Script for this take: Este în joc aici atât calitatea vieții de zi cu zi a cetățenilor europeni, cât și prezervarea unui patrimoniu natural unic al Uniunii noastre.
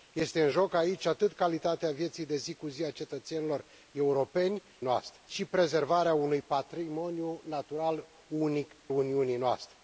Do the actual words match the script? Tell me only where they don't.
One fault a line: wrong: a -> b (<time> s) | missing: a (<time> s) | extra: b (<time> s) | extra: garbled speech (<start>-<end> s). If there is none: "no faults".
wrong: cât -> noastre (4.8 s)
missing: al (8.7 s)